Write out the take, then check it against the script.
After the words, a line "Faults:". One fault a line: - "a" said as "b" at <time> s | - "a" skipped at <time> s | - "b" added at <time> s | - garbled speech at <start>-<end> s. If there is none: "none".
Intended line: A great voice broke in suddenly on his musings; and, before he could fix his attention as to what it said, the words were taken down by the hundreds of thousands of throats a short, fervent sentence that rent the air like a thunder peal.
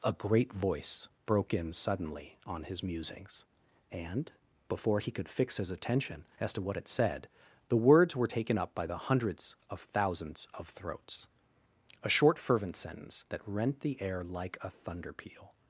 A great voice broke in suddenly on his musings; and, before he could fix his attention as to what it said, the words were taken up by the hundreds of thousands of throats a short, fervent sentence that rent the air like a thunder peal.
Faults:
- "down" said as "up" at 8.6 s